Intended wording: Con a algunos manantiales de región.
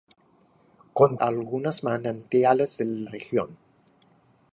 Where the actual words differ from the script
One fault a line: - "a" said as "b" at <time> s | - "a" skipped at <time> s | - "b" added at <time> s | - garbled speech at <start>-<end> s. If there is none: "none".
none